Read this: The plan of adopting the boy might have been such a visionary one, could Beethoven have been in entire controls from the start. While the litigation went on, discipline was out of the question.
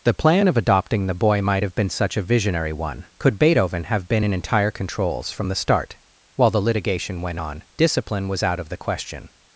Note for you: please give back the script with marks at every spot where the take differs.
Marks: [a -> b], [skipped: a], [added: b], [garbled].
The plan of adopting the boy might have been such a visionary one, could Beethoven have been in entire controls from the start. While the litigation went on, discipline was out of the question.